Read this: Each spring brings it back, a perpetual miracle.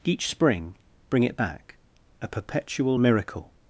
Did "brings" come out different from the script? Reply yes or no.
yes